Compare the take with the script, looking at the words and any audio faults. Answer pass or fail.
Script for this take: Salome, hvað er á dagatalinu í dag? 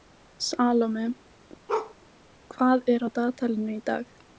fail